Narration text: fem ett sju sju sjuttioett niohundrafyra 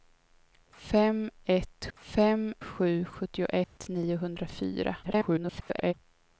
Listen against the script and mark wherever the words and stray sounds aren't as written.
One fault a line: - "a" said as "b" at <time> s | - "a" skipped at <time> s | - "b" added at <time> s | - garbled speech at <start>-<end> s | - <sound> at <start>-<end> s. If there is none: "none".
- "sju" said as "fem" at 1.9 s
- dropout at 3.6-3.8 s
- garbled speech at 5.0-5.9 s